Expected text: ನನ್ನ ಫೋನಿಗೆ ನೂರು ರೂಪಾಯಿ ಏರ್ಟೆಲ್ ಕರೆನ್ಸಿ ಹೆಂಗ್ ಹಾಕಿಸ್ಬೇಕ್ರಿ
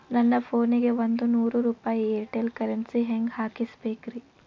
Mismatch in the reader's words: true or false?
true